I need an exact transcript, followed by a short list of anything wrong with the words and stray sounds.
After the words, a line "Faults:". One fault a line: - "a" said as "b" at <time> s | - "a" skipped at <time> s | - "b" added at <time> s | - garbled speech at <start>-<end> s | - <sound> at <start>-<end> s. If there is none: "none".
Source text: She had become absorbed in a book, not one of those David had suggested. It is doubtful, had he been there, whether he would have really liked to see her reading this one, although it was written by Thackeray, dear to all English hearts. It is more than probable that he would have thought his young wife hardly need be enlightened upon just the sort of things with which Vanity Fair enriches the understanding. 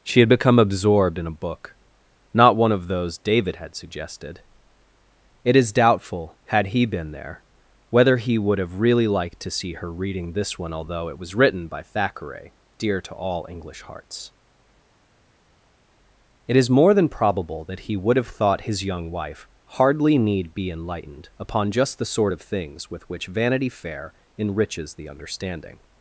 She had become absorbed in a book, not one of those David had suggested. It is doubtful, had he been there, whether he would have really liked to see her reading this one, although it was written by Thackeray, dear to all English hearts. It is more than probable that he would have thought his young wife hardly need be enlightened upon just the sort of things with which Vanity Fair enriches the understanding.
Faults:
none